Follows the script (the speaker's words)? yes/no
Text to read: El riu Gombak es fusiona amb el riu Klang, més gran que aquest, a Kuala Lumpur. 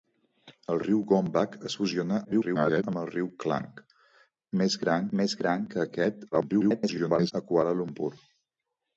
no